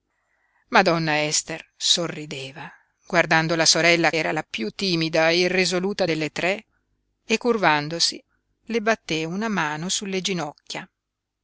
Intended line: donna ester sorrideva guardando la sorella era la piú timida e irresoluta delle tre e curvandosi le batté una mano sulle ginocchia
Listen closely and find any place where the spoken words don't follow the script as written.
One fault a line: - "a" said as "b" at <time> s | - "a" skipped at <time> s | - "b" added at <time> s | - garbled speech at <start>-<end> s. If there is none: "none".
none